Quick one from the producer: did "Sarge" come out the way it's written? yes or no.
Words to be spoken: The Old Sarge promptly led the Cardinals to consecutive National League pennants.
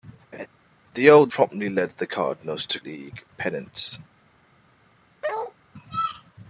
no